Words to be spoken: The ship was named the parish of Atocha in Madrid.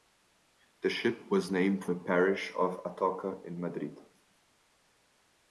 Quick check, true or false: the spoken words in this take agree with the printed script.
true